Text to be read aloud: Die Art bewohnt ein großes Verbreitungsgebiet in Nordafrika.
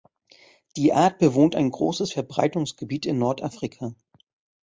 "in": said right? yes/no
yes